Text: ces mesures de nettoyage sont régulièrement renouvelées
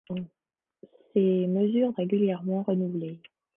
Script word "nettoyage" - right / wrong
wrong